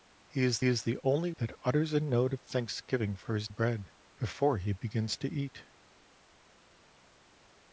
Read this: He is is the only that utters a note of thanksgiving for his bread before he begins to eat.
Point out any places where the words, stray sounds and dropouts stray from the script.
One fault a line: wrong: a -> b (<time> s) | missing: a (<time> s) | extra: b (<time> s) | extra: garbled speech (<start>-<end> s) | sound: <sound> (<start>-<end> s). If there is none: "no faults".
no faults